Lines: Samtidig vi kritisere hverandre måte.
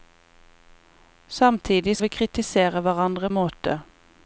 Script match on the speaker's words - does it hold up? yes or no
yes